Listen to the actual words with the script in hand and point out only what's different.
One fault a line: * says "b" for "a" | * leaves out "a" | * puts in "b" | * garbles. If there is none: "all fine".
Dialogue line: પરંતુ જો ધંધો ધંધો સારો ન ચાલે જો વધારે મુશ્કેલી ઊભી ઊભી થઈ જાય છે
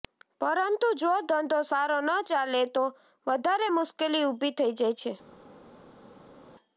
* leaves out "ધંધો"
* says "તો" for "જો"
* leaves out "ઊભી"